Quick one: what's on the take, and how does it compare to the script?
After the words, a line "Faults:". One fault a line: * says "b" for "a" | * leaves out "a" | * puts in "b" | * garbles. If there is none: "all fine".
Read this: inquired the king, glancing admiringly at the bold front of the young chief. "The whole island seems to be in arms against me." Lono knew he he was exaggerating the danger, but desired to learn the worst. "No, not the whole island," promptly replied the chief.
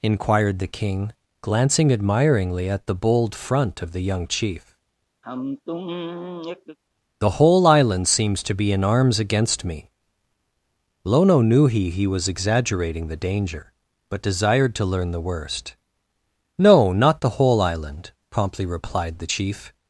inquired the king, glancing admiringly at the bold front of the young chief. "The whole island seems to be in arms against me." Lono knew he he was exaggerating the danger, but desired to learn the worst. "No, not the whole island," promptly replied the chief.
Faults:
all fine